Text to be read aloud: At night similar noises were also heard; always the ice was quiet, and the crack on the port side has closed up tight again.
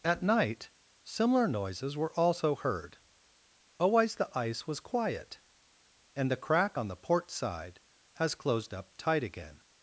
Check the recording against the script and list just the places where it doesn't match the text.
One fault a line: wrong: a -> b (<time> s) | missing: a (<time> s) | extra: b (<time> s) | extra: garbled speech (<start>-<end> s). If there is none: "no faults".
no faults